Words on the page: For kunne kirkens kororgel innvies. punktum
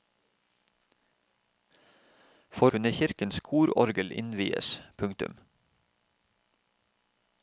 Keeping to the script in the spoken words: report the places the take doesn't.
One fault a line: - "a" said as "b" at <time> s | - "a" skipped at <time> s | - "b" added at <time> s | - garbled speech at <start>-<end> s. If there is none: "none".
none